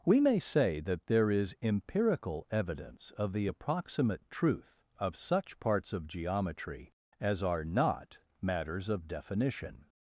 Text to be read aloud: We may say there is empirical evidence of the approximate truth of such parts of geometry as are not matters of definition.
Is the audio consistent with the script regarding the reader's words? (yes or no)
no